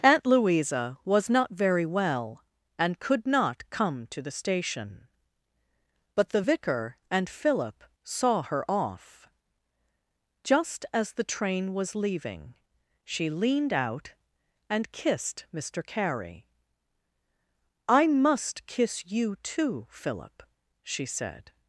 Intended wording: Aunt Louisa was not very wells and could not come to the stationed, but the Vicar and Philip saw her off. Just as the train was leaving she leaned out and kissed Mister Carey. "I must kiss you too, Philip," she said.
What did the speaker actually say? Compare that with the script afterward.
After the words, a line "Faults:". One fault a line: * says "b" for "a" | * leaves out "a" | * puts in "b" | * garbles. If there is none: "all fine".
Aunt Louisa was not very well and could not come to the station, but the Vicar and Philip saw her off. Just as the train was leaving she leaned out and kissed Mister Carey. "I must kiss you too, Philip," she said.
Faults:
* says "well" for "wells"
* says "station" for "stationed"